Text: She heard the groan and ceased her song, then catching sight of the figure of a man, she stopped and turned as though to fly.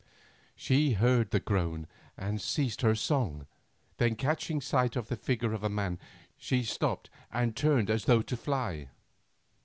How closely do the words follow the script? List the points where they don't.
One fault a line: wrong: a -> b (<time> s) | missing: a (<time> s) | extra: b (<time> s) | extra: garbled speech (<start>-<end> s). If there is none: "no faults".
no faults